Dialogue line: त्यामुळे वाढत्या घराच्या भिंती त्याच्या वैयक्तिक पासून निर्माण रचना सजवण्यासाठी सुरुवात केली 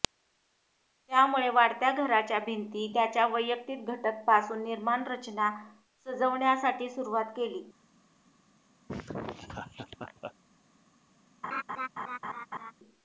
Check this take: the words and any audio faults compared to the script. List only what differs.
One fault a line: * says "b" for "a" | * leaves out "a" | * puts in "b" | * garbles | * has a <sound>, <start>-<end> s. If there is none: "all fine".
* puts in "घटक"
* has a laugh, 8.9-10.3 s
* has a laugh, 11.4-12.7 s